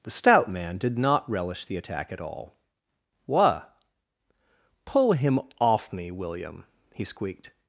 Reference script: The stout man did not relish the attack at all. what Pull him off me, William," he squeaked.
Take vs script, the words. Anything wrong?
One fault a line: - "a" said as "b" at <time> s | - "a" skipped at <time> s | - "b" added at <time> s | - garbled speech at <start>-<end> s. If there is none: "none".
none